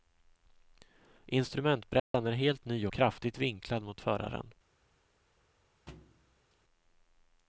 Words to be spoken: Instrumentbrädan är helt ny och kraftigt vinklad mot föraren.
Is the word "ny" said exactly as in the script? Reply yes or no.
yes